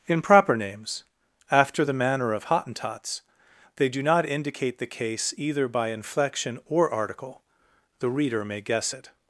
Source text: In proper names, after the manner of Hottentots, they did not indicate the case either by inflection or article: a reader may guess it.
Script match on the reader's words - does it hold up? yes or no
no